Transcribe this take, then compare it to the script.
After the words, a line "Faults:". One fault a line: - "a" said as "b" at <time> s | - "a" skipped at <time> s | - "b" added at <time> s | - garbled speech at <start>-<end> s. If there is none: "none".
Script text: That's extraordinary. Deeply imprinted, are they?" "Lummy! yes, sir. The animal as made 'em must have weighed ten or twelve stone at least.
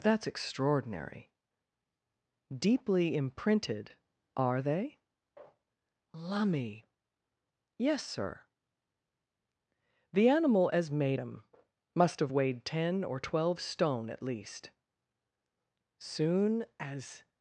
That's extraordinary. Deeply imprinted, are they?" "Lummy! yes, sir. The animal as made 'em must have weighed ten or twelve stone at least. Soon as
Faults:
- "Soon as" added at 16.0 s